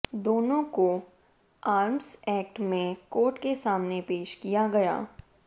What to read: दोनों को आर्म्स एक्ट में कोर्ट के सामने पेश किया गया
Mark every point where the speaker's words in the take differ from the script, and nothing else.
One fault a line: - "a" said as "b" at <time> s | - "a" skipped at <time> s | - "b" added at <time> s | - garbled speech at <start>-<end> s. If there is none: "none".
none